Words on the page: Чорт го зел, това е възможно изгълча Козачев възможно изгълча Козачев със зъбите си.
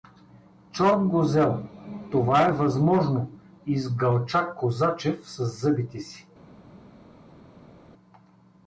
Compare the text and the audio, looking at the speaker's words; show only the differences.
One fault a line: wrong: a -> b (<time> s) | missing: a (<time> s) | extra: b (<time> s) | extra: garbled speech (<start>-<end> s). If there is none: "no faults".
missing: възможно изгълча Козачев (5.3 s)